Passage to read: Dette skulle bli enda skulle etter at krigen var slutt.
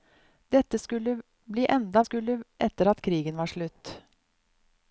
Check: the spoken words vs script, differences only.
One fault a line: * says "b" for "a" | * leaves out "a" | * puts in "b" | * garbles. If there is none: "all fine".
all fine